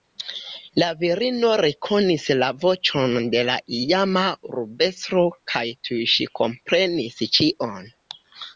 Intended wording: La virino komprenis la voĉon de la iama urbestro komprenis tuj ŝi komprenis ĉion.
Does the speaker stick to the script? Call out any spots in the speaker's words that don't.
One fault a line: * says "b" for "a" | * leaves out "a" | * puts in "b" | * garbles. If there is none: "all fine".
* says "rekonis" for "komprenis"
* says "kaj" for "komprenis"